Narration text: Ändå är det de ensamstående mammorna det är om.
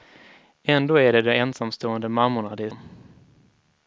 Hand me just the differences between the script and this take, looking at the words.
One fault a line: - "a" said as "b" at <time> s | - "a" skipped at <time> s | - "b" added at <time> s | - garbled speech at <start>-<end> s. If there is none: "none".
none